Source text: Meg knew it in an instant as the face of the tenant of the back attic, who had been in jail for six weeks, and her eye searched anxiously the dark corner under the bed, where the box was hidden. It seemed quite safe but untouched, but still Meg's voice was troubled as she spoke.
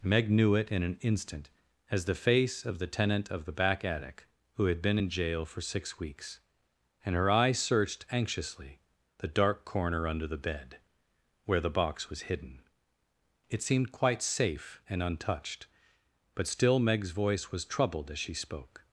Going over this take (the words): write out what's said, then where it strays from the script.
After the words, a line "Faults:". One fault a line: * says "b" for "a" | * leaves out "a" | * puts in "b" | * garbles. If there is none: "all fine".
Meg knew it in an instant as the face of the tenant of the back attic, who had been in jail for six weeks, and her eye searched anxiously the dark corner under the bed, where the box was hidden. It seemed quite safe and untouched, but still Meg's voice was troubled as she spoke.
Faults:
* says "and" for "but"